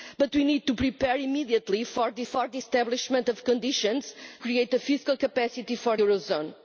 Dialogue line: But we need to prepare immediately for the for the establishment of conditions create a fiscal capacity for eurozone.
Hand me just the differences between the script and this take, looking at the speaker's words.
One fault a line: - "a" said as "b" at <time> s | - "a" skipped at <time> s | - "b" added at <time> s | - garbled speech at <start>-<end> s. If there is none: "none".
none